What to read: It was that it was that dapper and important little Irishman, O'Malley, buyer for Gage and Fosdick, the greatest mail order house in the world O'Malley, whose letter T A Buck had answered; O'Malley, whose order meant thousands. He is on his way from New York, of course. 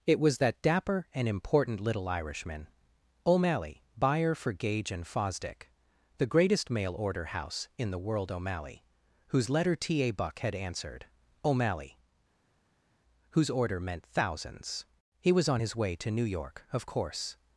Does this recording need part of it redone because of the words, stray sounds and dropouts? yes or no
yes